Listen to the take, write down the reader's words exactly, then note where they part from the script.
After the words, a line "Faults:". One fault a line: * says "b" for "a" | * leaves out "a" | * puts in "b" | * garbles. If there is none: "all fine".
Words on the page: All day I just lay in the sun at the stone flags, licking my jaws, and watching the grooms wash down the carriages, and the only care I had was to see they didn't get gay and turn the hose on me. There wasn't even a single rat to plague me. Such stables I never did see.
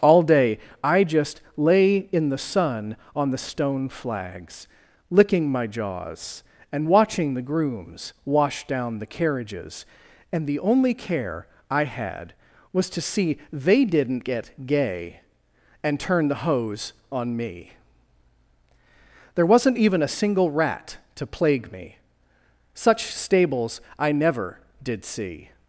All day I just lay in the sun on the stone flags, licking my jaws, and watching the grooms wash down the carriages, and the only care I had was to see they didn't get gay and turn the hose on me. There wasn't even a single rat to plague me. Such stables I never did see.
Faults:
* says "on" for "at"